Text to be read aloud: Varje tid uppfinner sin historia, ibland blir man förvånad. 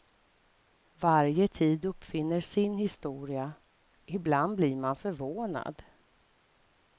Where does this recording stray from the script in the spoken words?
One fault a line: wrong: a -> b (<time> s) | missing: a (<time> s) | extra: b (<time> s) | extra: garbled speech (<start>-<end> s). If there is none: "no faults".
no faults